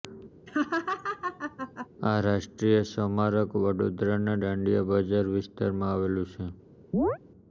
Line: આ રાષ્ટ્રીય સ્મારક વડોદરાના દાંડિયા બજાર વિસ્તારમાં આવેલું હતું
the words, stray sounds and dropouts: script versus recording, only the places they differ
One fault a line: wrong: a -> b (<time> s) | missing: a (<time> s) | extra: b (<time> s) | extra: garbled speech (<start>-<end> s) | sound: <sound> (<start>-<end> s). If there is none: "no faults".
sound: laugh (0.5-1.9 s)
wrong: હતું -> છે (6.3 s)
sound: chirp (6.9-7.2 s)